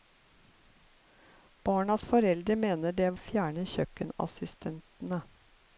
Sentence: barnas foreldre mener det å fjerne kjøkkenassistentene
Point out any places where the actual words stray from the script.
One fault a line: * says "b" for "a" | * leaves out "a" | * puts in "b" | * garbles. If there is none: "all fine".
all fine